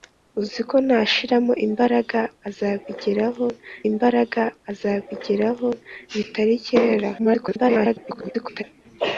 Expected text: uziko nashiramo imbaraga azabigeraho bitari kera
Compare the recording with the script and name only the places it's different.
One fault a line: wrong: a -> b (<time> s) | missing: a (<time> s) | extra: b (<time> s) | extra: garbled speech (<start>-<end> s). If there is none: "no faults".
extra: imbaraga azabigeraho (3.9 s)
extra: garbled speech (7.2-8.6 s)